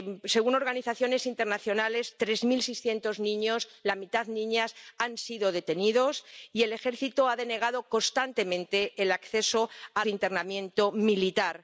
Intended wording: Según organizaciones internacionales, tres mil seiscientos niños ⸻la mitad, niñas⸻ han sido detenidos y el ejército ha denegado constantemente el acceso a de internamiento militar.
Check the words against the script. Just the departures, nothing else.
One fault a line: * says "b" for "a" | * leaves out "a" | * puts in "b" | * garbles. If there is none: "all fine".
all fine